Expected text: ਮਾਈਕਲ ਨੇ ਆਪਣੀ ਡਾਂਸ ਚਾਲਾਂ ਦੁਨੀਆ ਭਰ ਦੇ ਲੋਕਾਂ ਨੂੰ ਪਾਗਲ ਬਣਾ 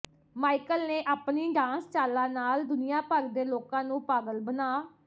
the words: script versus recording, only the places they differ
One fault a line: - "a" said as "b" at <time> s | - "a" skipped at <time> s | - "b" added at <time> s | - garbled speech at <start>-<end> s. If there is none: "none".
- "ਨਾਲ" added at 2.3 s